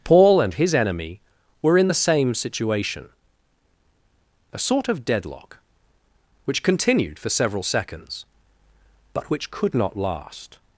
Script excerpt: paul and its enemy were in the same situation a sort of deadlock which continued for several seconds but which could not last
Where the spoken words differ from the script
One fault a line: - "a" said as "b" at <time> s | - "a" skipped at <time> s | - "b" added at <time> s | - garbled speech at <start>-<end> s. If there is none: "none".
- "its" said as "his" at 0.5 s